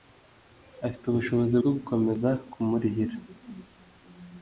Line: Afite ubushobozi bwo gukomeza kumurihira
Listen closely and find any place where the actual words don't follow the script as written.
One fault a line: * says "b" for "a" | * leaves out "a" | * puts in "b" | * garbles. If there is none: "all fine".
all fine